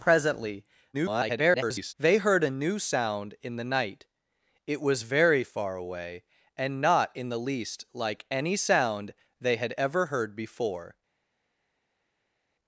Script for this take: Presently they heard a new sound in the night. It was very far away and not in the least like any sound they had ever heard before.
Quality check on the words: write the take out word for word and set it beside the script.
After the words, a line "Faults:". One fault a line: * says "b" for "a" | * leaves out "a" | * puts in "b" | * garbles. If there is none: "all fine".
Presently [garbled] they heard a new sound in the night. It was very far away and not in the least like any sound they had ever heard before.
Faults:
* garbles